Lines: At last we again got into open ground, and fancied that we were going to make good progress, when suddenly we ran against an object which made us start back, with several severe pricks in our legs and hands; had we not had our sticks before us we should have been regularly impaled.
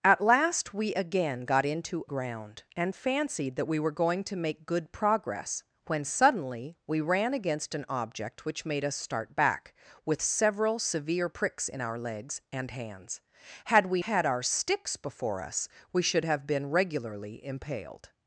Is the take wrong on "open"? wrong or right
wrong